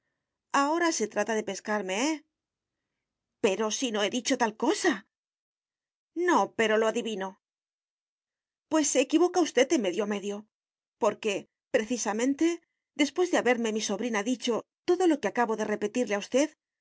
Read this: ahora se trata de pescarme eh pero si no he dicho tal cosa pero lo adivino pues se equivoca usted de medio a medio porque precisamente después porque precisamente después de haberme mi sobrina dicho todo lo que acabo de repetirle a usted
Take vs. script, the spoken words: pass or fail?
fail